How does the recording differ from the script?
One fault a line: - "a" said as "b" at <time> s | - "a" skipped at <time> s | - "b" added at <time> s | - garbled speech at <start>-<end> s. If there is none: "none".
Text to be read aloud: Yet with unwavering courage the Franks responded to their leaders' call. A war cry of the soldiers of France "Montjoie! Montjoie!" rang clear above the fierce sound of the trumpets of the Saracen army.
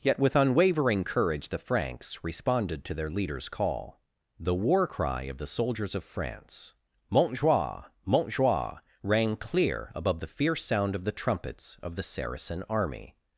- "A" said as "The" at 4.4 s